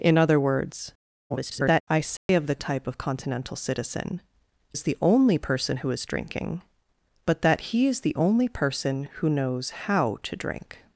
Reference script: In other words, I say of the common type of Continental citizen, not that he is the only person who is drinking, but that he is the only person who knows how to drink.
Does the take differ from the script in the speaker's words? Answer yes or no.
yes